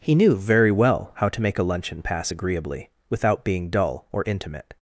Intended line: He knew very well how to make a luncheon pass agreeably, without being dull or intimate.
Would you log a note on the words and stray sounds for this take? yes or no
no